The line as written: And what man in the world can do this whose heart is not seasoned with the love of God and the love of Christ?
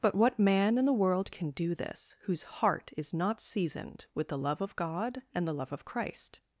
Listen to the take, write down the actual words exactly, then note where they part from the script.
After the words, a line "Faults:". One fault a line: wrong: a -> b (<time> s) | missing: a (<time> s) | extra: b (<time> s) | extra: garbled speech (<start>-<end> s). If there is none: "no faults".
But what man in the world can do this whose heart is not seasoned with the love of God and the love of Christ?
Faults:
wrong: And -> But (0.0 s)